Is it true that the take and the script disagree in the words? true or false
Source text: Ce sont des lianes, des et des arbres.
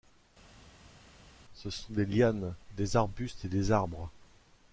true